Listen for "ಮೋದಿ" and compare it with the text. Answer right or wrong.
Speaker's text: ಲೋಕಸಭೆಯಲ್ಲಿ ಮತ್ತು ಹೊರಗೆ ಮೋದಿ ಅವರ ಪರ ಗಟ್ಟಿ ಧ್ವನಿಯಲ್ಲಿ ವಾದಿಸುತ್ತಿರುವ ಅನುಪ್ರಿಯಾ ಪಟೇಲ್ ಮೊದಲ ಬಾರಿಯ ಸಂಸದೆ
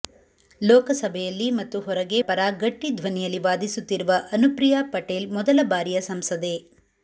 wrong